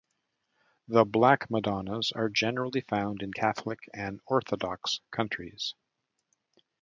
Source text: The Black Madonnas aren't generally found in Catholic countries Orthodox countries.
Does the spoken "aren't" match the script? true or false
false